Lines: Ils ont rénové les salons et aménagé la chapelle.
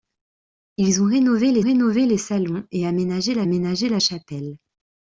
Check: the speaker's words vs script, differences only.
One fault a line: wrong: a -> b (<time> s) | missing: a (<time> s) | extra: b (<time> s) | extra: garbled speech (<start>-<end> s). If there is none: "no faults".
extra: rénové les (1.6 s)
extra: aménagé la (3.4 s)